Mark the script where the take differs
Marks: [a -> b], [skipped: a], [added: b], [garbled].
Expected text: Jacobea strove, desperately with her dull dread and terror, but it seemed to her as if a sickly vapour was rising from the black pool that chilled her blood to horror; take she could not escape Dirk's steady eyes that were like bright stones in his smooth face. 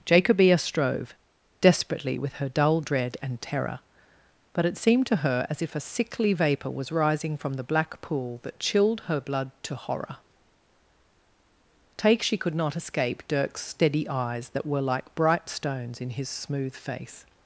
Jacobea strove, desperately with her dull dread and terror, but it seemed to her as if a sickly vapour was rising from the black pool that chilled her blood to horror; take she could not escape Dirk's steady eyes that were like bright stones in his smooth face.